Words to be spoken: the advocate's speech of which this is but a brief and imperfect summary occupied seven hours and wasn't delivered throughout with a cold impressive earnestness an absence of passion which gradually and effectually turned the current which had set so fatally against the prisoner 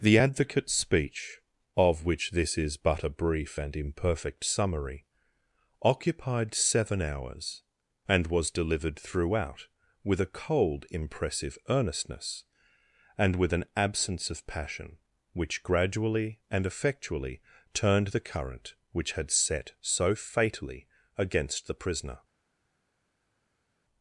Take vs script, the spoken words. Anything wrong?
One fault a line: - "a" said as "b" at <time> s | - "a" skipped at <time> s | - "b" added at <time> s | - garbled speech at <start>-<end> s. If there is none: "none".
- "wasn't" said as "was" at 8.3 s
- "and with" added at 13.2 s